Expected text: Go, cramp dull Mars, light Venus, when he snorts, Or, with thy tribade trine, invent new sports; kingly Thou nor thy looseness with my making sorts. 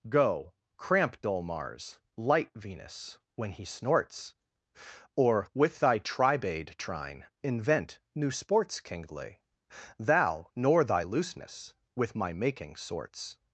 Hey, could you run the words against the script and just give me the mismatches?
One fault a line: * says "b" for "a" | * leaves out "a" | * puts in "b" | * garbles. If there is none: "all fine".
all fine